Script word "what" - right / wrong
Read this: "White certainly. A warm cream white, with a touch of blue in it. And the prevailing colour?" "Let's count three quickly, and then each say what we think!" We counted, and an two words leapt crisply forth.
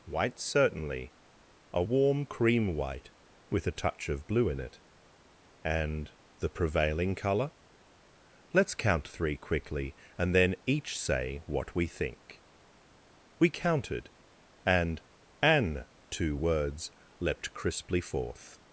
right